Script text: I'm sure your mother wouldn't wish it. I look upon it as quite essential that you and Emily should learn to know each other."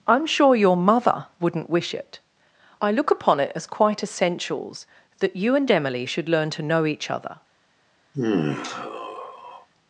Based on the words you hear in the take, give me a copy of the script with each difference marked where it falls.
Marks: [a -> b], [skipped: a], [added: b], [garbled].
I'm sure your mother wouldn't wish it. I look upon it as quite [essential -> essentials] that you and Emily should learn to know each other."